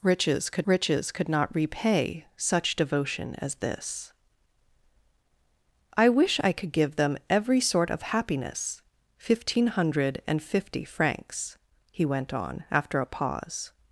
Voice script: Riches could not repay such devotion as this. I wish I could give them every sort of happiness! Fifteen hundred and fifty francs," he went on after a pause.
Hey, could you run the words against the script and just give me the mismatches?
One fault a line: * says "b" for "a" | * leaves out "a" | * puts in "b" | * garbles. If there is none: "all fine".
* puts in "riches could"